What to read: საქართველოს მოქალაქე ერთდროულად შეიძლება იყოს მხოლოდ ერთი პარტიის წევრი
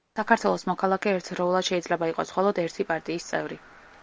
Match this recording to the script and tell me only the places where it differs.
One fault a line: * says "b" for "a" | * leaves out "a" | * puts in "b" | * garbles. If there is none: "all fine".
all fine